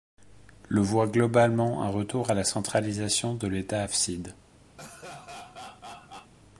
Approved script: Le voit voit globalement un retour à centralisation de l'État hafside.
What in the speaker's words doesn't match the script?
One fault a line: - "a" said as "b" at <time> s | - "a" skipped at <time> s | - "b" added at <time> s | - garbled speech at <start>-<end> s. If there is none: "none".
- "voit" skipped at 1.1 s
- "la" added at 2.3 s